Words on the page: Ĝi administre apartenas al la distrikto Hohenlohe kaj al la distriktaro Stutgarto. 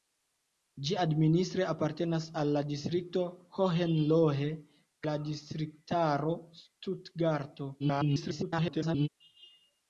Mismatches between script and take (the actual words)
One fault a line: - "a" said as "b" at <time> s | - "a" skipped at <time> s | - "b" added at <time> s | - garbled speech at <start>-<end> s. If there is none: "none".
- "kaj al" skipped at 4.5 s
- garbled speech at 7.8-9.1 s